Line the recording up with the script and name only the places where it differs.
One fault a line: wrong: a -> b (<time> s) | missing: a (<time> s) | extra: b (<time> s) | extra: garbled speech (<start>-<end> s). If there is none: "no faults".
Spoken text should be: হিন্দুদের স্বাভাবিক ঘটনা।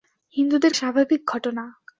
no faults